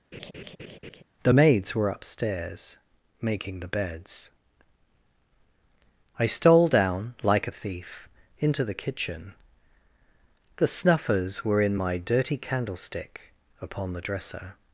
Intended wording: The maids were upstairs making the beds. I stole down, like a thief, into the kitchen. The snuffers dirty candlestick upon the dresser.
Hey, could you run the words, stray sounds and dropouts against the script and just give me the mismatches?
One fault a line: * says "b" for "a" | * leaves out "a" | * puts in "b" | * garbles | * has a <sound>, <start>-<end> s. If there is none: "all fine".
* has a laugh, 0.1-1.0 s
* puts in "were in my"